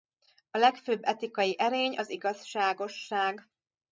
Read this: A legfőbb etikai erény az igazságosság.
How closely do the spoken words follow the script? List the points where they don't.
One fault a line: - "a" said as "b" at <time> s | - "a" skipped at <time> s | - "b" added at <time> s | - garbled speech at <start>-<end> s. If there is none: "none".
none